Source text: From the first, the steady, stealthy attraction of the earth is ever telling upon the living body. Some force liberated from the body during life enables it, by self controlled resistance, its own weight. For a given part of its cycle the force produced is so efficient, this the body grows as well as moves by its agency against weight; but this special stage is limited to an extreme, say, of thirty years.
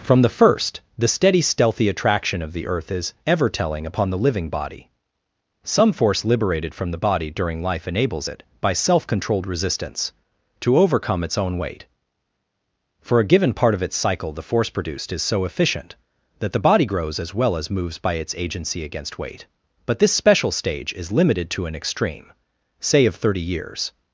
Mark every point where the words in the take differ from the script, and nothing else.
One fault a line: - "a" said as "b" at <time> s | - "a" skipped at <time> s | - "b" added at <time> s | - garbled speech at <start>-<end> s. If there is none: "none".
- "to overcome" added at 10.6 s
- "this" said as "that" at 16.4 s